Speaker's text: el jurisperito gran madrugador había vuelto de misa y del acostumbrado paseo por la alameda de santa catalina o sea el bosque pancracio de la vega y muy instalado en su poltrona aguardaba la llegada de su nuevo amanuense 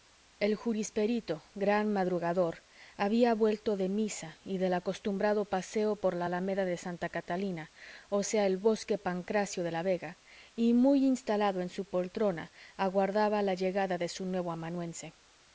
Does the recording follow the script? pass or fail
pass